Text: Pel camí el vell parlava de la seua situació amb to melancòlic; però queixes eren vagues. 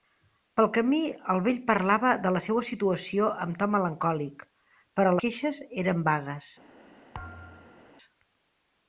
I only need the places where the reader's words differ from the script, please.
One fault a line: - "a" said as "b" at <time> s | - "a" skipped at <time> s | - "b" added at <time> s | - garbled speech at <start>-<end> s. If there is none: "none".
none